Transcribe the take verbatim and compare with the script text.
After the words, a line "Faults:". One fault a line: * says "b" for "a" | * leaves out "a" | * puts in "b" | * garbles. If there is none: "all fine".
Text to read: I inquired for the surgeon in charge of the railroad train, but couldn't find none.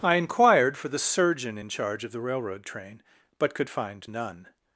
I inquired for the surgeon in charge of the railroad train, but could find none.
Faults:
* says "could" for "couldn't"